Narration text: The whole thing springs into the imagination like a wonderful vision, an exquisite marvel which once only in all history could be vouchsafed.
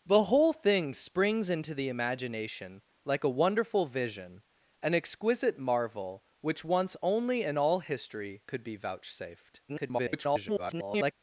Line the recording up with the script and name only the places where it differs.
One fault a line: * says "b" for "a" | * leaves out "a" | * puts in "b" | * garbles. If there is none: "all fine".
* garbles